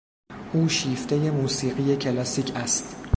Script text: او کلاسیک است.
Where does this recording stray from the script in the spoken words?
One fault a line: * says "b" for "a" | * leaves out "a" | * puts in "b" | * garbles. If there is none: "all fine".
* puts in "شیفتهی موسیقی"